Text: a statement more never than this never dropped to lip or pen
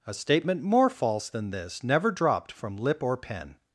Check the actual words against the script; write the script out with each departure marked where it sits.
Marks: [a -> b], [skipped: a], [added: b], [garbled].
a statement more [never -> false] than this never dropped [to -> from] lip or pen